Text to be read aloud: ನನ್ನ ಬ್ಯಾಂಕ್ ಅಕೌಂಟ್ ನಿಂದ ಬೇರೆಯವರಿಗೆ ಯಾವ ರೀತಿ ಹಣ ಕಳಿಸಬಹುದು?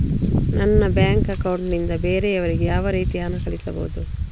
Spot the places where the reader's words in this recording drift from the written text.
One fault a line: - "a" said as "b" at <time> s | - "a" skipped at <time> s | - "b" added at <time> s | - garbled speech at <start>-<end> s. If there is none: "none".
none